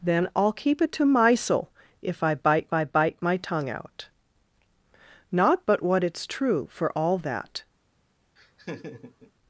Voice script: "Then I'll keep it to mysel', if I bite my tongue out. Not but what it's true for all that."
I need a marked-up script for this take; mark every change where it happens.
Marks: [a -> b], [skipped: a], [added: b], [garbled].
"Then I'll keep it to mysel', if I bite [added: I bite] my tongue out. Not but what it's true for all that."